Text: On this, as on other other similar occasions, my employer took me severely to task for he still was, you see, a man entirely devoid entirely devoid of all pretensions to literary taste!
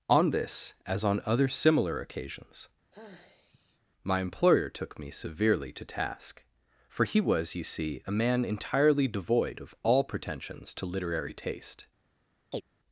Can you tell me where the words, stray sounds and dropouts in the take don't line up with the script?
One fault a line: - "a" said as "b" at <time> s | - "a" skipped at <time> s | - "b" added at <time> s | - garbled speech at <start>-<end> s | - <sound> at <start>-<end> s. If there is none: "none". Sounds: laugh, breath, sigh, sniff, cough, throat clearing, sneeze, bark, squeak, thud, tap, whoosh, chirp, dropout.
- "other" skipped at 1.5 s
- sigh at 2.9-3.8 s
- "still" skipped at 7.2 s
- "entirely devoid" skipped at 9.6 s
- chirp at 12.5-12.6 s